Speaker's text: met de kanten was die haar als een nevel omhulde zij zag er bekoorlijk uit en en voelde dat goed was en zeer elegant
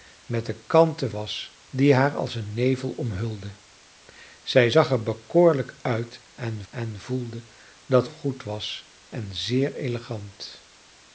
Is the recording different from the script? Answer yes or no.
no